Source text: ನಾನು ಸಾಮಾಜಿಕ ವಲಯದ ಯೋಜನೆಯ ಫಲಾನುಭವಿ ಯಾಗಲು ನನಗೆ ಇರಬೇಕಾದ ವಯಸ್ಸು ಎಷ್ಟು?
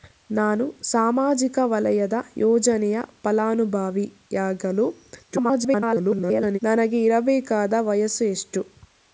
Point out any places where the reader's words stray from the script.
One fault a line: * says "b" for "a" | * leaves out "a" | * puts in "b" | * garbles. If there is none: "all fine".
* garbles